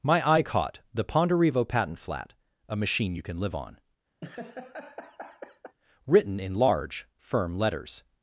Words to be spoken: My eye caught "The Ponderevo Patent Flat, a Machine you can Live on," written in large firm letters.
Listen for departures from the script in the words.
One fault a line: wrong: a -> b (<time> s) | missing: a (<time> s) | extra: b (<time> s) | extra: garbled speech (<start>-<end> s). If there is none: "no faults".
no faults